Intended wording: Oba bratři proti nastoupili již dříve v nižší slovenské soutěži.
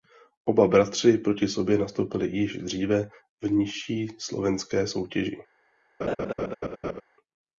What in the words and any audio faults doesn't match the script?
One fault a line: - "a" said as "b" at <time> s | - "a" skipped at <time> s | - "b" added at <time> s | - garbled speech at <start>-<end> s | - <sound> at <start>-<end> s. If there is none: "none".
- "sobě" added at 1.5 s
- laugh at 6.0-7.0 s